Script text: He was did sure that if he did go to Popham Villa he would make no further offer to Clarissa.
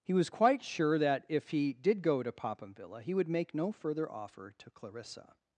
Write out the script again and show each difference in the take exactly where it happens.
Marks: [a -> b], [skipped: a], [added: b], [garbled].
He was [did -> quite] sure that if he did go to Popham Villa he would make no further offer to Clarissa.